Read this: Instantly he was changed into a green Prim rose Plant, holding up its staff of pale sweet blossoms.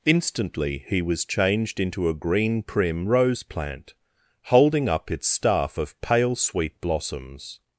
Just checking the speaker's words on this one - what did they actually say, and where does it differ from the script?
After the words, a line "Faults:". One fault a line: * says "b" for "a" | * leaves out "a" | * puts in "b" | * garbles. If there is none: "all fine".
Instantly he was changed into a green Prim rose Plant, holding up its staff of pale sweet blossoms.
Faults:
all fine